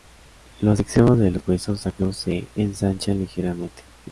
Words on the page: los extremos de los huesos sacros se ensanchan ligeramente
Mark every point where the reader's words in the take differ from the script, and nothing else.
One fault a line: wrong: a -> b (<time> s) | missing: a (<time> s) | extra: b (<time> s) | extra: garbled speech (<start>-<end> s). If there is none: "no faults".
no faults